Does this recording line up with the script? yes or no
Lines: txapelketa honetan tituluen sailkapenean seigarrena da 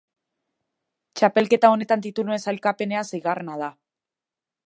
yes